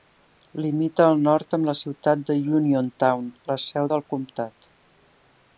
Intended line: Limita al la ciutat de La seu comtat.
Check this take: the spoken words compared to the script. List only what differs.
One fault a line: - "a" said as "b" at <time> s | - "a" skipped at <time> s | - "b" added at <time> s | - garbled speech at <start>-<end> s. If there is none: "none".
- "nord amb" added at 1.3 s
- "Uniontown" added at 2.6 s
- "del" added at 3.9 s